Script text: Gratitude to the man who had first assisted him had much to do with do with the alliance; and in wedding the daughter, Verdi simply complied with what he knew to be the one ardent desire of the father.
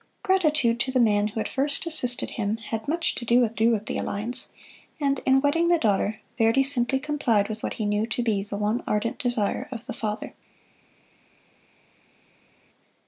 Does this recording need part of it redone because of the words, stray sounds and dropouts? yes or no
no